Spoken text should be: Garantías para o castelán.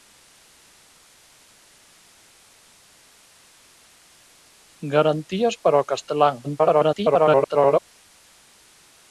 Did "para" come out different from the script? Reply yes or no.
no